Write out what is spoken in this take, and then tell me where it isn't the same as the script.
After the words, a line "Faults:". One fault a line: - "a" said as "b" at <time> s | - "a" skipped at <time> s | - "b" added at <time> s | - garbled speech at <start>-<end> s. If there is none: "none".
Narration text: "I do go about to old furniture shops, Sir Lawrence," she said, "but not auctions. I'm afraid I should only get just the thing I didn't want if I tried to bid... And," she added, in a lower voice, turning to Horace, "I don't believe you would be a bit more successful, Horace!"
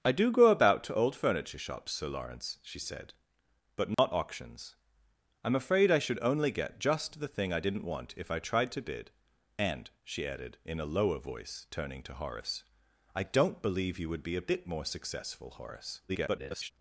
"I do go about to old furniture shops, Sir Lawrence," she said, "but not auctions. I'm afraid I should only get just the thing I didn't want if I tried to bid... And," she added, in a lower voice, turning to Horace, "I don't believe you would be a bit more successful, Horace!" [garbled]
Faults:
- garbled speech at 16.1-16.7 s